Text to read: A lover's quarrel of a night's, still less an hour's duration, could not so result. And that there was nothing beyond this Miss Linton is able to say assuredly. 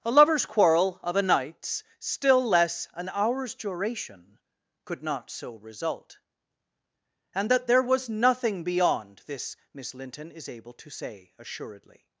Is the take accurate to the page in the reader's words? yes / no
yes